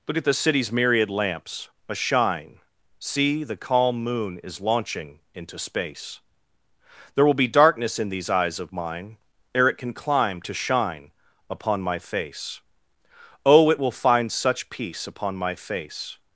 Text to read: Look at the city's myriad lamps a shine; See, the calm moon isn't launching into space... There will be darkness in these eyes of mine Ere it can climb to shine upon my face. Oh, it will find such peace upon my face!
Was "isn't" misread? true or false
true